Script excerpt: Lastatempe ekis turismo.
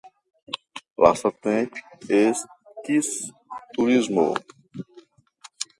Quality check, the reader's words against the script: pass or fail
pass